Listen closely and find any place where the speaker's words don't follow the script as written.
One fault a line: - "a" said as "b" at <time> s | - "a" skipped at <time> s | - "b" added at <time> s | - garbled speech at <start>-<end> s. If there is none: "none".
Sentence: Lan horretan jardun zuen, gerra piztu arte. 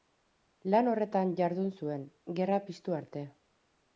none